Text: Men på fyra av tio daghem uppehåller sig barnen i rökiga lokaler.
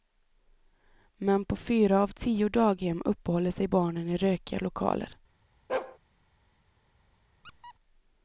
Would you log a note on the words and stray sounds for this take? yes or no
yes